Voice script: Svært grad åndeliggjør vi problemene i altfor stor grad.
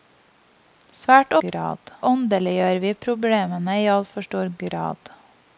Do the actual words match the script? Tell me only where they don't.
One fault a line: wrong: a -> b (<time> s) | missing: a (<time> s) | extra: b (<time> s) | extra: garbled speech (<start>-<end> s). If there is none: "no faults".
no faults